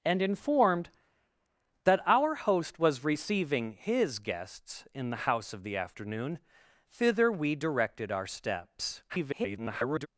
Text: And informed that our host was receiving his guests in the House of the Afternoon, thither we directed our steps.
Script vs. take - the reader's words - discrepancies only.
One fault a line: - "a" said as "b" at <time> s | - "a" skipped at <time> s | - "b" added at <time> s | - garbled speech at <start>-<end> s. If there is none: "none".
- garbled speech at 9.1-10.1 s